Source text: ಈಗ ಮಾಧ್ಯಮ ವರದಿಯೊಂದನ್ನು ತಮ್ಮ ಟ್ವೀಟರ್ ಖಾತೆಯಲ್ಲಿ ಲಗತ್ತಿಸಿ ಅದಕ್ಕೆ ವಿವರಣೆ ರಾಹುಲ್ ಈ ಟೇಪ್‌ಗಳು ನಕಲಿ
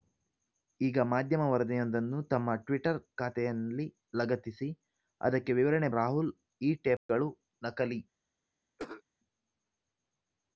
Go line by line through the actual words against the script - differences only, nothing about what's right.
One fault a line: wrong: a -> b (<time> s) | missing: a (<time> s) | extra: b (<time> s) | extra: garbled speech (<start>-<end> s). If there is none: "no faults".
no faults